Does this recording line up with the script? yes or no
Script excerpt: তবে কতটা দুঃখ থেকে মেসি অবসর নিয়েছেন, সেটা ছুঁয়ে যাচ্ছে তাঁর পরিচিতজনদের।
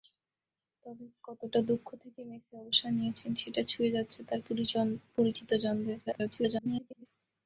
no